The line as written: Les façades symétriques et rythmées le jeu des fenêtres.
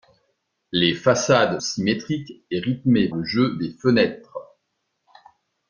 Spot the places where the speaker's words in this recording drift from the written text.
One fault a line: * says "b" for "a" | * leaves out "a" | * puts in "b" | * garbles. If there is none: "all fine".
all fine